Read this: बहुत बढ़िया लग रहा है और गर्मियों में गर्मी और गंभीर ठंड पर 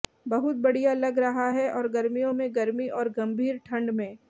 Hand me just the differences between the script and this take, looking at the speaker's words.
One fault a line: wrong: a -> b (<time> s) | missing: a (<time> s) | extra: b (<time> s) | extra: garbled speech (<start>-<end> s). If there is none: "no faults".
wrong: पर -> में (3.9 s)